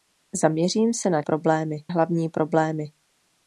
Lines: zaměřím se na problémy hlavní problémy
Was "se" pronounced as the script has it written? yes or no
yes